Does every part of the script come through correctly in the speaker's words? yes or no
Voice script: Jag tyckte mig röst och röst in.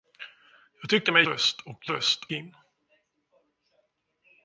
yes